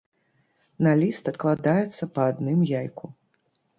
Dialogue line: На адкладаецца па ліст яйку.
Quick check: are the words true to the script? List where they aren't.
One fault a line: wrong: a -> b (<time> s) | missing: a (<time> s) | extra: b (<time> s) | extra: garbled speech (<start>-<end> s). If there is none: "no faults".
extra: ліст (1.0 s)
wrong: ліст -> адным (2.3 s)